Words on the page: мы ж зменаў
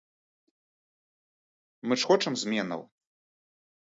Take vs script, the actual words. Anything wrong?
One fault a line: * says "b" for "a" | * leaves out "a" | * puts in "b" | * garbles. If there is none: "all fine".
* puts in "хочам"